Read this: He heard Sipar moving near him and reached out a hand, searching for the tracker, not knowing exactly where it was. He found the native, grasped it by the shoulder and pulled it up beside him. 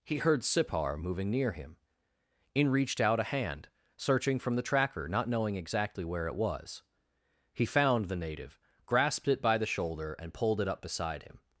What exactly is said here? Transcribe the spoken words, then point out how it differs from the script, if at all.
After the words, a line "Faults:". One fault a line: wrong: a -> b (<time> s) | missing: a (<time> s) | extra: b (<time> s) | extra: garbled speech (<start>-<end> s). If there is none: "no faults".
He heard Sipar moving near him in reached out a hand, searching from the tracker, not knowing exactly where it was. He found the native, grasped it by the shoulder and pulled it up beside him.
Faults:
wrong: and -> in (2.5 s)
wrong: for -> from (4.4 s)